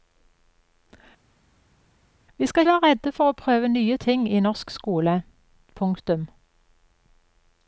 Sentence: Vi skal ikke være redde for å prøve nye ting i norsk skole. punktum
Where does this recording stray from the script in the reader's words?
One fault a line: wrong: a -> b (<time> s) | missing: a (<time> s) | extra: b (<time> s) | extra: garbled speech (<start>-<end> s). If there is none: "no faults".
missing: ikke (2.6 s)